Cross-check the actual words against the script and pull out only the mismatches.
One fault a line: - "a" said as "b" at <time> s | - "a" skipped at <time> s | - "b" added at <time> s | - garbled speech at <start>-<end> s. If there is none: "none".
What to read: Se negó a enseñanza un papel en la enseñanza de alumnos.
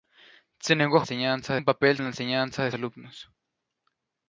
none